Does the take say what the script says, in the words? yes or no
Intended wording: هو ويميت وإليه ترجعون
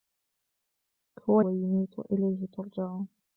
yes